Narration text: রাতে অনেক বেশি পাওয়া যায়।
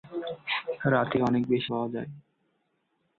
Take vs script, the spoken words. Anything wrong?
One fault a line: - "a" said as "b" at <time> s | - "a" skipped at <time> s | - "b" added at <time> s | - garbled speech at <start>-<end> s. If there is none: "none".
none